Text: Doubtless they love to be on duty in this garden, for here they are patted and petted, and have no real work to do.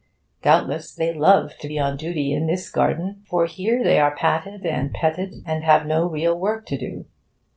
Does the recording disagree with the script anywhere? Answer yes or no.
no